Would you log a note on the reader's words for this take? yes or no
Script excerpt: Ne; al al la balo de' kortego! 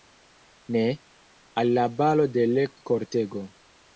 yes